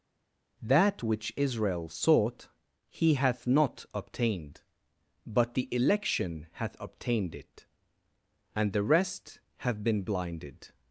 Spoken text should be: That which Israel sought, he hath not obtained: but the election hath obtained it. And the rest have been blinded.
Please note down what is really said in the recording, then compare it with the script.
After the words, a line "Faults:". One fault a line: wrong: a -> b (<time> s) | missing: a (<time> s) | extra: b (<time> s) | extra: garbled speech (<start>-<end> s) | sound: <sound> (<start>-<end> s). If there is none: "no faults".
That which Israel sought, he hath not obtained: but the election hath obtained it. And the rest have been blinded.
Faults:
no faults